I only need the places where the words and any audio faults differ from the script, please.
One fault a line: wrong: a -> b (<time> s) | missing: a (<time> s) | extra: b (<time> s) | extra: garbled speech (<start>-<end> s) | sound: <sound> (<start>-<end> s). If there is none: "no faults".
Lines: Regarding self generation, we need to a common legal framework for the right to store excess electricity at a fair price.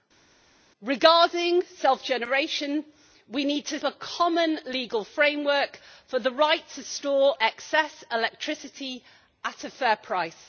no faults